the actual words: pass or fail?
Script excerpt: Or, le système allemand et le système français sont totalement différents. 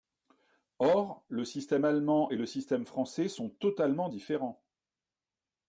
pass